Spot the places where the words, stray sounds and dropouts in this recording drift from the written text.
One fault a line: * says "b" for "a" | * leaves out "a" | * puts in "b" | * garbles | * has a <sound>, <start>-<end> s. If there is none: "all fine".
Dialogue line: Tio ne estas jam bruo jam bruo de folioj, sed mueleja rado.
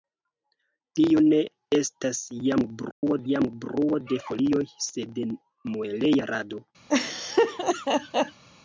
* has a dropout, 2.9-3.0 s
* has a laugh, 6.9-8.4 s